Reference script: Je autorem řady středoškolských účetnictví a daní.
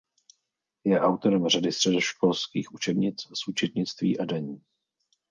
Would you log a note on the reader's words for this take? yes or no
yes